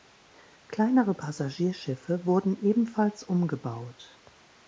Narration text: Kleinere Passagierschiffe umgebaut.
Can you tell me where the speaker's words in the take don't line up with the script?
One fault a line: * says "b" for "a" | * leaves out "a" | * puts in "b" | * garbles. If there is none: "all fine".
* puts in "wurden ebenfalls"